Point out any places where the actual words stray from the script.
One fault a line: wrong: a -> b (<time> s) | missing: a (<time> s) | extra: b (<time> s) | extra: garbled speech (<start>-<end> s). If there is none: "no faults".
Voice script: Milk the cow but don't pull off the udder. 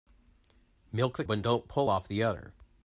missing: cow (1.2 s)